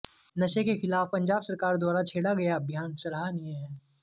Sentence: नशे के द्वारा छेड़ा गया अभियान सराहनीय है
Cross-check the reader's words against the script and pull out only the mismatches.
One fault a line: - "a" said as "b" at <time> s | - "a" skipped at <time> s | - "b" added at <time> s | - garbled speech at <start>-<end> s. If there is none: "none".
- "खिलाफ पंजाब सरकार" added at 0.8 s